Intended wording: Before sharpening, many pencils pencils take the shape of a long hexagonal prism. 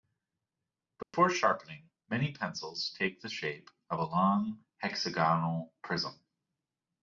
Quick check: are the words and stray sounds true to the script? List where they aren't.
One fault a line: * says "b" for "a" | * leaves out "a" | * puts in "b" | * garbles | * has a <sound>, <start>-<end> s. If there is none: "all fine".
* has a dropout, 1.0-1.1 s
* leaves out "pencils"